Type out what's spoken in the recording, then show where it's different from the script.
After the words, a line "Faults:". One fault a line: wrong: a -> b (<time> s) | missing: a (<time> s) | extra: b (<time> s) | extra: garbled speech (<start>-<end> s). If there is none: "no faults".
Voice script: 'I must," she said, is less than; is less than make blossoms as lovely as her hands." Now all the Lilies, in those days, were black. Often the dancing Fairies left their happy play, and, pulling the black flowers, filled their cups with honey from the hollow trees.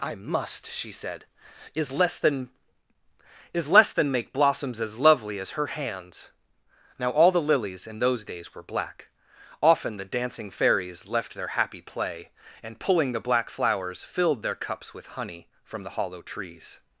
'I must," she said, is less than; is less than make blossoms as lovely as her hands." Now all the Lilies, in those days, were black. Often the dancing Fairies left their happy play, and, pulling the black flowers, filled their cups with honey from the hollow trees.
Faults:
no faults